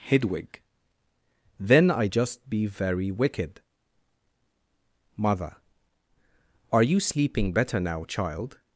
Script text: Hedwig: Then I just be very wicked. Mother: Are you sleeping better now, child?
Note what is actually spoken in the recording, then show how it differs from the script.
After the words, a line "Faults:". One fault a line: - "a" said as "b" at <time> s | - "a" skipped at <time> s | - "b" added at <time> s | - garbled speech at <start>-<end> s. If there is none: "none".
Hedwig: Then I just be very wicked. Mother: Are you sleeping better now, child?
Faults:
none